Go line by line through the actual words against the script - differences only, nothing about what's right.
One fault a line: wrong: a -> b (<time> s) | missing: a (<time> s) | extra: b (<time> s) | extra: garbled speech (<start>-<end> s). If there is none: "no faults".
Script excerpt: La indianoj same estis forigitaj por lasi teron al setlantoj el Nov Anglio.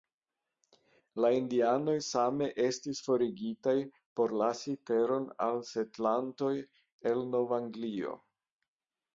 no faults